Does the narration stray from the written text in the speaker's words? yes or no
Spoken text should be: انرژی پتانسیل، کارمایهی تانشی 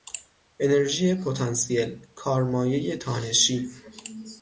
no